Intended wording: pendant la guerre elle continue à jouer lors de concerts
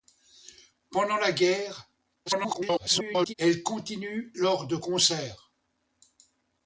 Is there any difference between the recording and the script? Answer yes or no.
yes